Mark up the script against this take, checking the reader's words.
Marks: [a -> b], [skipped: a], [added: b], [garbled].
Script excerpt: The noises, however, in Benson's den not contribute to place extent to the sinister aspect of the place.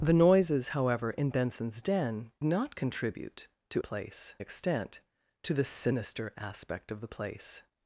The noises, however, in Benson's den not contribute to place extent to the sinister aspect of the place.